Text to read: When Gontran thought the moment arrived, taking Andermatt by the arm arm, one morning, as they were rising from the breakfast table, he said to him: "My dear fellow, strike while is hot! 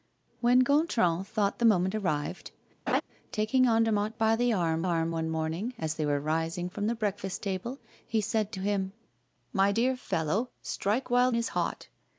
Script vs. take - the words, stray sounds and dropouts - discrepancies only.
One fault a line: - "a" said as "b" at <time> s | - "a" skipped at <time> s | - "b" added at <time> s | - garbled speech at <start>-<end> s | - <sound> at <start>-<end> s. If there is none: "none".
- laugh at 2.9-3.0 s